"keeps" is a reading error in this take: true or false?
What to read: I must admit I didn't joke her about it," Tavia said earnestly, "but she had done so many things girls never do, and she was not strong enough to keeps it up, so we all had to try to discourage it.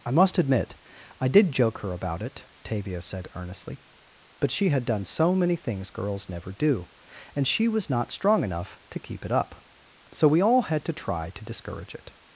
true